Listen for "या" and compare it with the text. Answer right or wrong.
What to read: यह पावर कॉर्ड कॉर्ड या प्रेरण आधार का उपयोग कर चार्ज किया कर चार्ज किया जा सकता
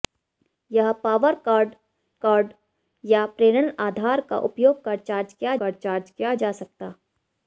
right